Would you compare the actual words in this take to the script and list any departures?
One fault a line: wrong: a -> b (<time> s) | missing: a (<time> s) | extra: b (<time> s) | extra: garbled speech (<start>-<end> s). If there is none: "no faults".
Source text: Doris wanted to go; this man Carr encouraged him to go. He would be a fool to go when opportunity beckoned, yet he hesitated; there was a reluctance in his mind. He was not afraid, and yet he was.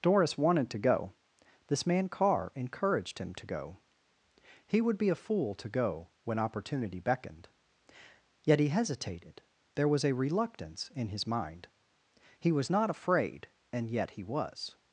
no faults